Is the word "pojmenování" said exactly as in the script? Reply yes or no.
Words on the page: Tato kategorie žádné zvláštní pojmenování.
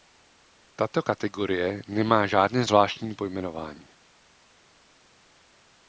yes